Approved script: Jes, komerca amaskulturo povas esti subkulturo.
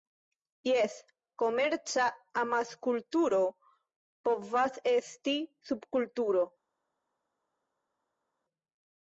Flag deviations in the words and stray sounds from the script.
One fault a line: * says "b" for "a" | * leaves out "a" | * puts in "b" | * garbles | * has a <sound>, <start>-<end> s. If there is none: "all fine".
all fine